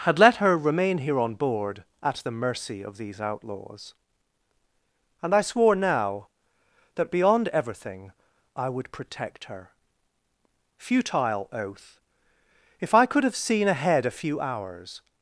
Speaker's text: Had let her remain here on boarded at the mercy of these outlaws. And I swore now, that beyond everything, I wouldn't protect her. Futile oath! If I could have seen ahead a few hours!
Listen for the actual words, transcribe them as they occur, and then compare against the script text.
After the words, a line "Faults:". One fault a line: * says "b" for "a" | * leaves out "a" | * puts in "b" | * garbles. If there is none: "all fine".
Had let her remain here on board at the mercy of these outlaws. And I swore now, that beyond everything, I would protect her. Futile oath! If I could have seen ahead a few hours!
Faults:
* says "board" for "boarded"
* says "would" for "wouldn't"